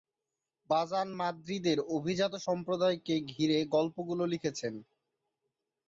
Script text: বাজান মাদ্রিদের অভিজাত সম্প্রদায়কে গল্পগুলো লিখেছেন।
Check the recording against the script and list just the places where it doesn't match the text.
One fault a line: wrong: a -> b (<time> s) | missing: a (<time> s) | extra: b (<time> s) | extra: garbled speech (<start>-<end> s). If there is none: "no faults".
extra: ঘিরে (3.3 s)